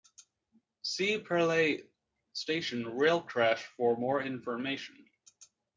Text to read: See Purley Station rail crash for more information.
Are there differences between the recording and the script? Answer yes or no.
no